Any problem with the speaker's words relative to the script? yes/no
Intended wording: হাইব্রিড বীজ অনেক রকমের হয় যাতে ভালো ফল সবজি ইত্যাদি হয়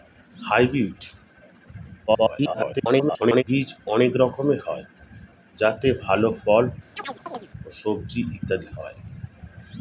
yes